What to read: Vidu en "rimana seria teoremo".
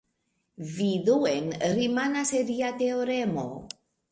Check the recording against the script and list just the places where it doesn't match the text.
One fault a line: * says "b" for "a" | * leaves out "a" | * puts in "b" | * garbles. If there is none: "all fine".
all fine